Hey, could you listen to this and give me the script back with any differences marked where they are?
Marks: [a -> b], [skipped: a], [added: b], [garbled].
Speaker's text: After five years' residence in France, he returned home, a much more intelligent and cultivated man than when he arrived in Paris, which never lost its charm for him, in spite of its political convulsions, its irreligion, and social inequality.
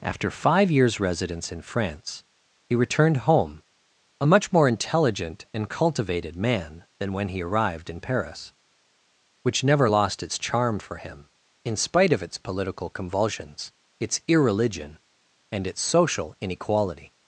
After five years' residence in France, he returned home, a much more intelligent and cultivated man than when he arrived in Paris, which never lost its charm for him, in spite of its political convulsions, its irreligion, and [added: its] social inequality.